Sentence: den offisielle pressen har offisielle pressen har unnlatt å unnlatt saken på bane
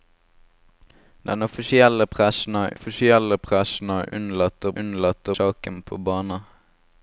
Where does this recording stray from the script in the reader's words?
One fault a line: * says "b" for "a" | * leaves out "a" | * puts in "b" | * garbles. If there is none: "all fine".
all fine